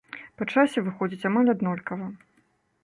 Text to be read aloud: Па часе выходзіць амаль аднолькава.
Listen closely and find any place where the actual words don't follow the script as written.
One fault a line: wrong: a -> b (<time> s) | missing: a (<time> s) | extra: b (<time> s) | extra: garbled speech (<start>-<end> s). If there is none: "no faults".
no faults